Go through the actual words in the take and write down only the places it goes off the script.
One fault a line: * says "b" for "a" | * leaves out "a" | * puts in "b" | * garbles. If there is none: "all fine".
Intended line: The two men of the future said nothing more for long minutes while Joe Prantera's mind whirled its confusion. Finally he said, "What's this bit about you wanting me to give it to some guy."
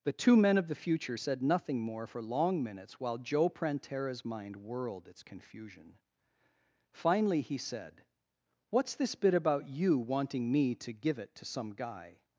all fine